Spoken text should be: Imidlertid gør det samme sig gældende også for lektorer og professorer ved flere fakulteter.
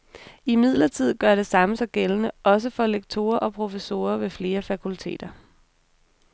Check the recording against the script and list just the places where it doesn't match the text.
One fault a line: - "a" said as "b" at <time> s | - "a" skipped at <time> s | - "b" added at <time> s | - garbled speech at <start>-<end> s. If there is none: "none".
none